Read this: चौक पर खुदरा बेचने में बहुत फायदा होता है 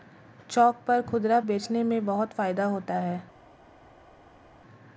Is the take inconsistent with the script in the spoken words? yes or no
no